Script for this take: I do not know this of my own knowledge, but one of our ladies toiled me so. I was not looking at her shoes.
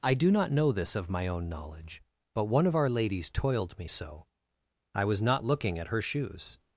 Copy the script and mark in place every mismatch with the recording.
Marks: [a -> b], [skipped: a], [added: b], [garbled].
I do not know this of my own knowledge, but one of our ladies toiled me so. I was not looking at her shoes.